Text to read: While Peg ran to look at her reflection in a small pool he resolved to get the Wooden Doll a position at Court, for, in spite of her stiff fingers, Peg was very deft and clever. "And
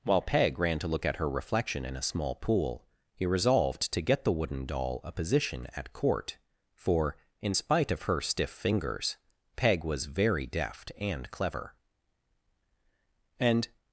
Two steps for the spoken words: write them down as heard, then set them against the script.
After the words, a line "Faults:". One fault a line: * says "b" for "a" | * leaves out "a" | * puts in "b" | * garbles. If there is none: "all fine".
While Peg ran to look at her reflection in a small pool he resolved to get the Wooden Doll a position at Court, for, in spite of her stiff fingers, Peg was very deft and clever. "And
Faults:
all fine